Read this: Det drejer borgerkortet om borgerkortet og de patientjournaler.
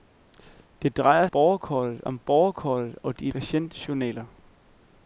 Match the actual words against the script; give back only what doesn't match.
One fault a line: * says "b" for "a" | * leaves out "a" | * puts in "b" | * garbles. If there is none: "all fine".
all fine